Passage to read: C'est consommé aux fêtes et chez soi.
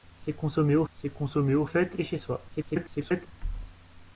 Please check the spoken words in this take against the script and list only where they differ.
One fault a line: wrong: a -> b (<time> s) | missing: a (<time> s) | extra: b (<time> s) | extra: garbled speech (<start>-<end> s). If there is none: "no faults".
extra: c'est consommé aux (0.9 s)
extra: garbled speech (2.5-3.3 s)